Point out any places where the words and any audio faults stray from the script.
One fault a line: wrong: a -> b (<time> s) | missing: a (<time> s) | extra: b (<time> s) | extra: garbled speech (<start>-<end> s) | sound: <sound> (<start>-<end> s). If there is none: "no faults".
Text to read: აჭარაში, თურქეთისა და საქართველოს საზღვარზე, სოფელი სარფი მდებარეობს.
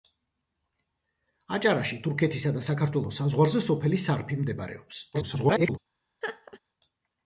extra: garbled speech (5.1-5.8 s)
sound: laugh (6.2-6.6 s)